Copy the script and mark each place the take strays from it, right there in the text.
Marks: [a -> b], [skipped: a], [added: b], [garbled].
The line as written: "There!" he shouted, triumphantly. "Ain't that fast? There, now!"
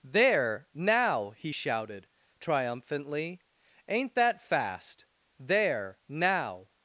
"There!" [added: now] he shouted, triumphantly. "Ain't that fast? There, now!"